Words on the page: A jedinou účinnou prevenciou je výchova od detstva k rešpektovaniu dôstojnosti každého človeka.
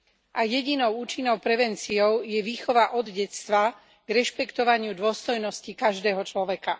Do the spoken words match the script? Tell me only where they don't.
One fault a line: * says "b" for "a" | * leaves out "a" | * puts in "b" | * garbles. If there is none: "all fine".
all fine